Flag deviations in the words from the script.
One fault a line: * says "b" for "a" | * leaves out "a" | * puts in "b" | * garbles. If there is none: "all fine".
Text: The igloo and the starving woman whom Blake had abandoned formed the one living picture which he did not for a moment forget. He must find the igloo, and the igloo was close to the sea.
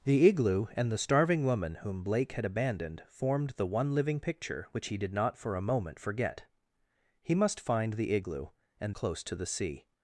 * leaves out "the igloo was"